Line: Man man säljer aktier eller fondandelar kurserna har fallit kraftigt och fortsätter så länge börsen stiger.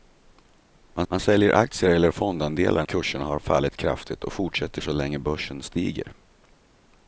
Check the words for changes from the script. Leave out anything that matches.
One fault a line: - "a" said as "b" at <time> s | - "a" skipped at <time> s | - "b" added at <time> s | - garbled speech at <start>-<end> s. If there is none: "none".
none